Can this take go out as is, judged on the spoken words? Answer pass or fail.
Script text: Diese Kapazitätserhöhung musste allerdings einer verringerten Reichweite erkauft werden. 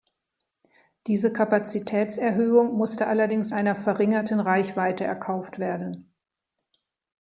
pass